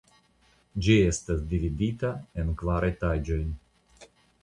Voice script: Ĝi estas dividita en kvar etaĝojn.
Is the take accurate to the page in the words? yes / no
yes